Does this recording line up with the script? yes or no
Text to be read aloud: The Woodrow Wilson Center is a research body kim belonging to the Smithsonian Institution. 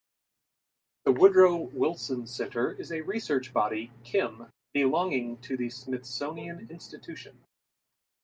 yes